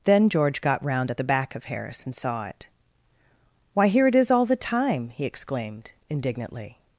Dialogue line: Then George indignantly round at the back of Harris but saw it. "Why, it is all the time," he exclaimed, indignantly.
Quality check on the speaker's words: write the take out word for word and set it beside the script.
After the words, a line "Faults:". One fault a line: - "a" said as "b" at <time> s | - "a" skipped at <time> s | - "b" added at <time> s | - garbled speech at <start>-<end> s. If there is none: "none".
Then George got round at the back of Harris and saw it. "Why, here it is all the time," he exclaimed, indignantly.
Faults:
- "indignantly" said as "got" at 0.6 s
- "but" said as "and" at 2.0 s
- "here" added at 3.9 s